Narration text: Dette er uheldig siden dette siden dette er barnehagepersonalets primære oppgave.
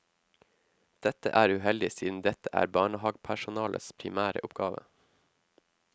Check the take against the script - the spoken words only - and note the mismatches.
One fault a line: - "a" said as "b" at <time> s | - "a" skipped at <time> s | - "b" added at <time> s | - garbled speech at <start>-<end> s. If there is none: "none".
- "siden dette" skipped at 2.5 s